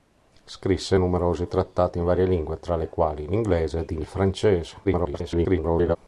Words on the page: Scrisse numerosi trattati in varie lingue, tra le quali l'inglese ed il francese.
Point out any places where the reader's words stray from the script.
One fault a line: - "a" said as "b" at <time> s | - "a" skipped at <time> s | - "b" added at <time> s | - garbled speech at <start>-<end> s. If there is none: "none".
- garbled speech at 4.8-6.0 s